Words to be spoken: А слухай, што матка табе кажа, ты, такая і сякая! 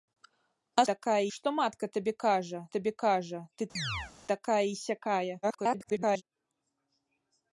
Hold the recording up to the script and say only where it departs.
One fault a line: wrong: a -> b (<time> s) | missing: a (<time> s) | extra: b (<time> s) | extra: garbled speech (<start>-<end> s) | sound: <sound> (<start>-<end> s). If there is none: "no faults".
wrong: слухай -> такая (0.9 s)
extra: табе кажа (2.8 s)
sound: chirp (3.8-4.1 s)
extra: garbled speech (5.4-6.2 s)